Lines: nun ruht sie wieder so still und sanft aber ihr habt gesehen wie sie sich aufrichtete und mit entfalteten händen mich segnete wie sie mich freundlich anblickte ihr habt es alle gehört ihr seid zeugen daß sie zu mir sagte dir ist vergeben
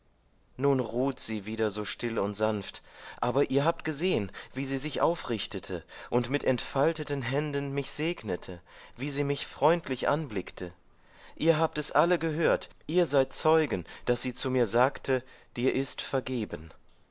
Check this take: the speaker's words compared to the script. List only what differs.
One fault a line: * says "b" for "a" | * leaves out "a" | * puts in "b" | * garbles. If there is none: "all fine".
all fine